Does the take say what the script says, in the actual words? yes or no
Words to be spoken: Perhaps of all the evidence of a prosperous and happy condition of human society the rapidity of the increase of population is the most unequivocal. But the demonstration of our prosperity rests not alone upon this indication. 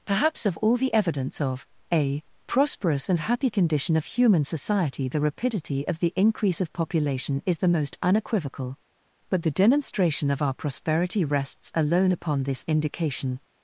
no